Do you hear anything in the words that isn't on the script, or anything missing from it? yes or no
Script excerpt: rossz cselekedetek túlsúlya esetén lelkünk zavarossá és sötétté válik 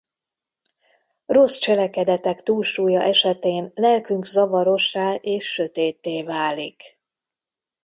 no